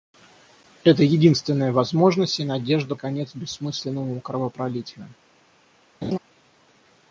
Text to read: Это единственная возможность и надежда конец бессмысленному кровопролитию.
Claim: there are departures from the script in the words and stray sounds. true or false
true